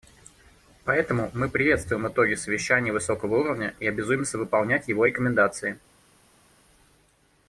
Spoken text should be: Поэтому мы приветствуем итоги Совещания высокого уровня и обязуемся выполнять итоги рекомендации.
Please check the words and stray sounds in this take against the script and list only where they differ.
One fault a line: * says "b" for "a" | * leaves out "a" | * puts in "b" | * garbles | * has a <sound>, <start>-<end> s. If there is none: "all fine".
* says "его" for "итоги"